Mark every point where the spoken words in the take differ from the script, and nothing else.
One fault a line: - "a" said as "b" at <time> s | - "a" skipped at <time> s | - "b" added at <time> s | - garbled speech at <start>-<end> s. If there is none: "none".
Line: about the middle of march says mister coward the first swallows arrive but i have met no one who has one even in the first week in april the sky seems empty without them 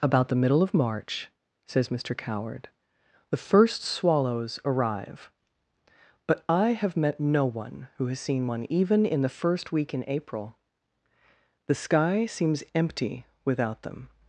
- "seen" added at 8.2 s